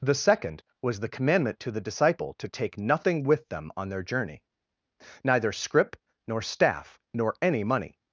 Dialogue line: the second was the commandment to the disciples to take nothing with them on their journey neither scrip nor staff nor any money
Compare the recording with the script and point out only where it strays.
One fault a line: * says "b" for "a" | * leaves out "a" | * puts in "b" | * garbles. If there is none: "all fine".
* says "disciple" for "disciples"